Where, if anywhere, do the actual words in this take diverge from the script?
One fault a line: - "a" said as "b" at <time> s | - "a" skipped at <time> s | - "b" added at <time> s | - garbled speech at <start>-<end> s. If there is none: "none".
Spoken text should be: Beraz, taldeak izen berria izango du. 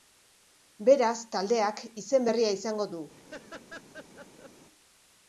none